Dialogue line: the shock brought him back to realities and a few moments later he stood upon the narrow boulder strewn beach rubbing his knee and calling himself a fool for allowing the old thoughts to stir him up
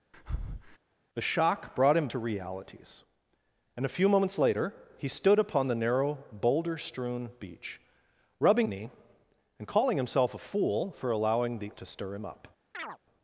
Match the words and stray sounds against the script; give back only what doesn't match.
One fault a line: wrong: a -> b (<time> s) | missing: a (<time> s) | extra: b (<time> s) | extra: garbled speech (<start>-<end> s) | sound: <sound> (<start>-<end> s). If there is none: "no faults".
sound: breath (0.1-0.8 s)
missing: back (2.1 s)
missing: his (8.7 s)
missing: old thoughts (11.7 s)
sound: chirp (12.7-13.0 s)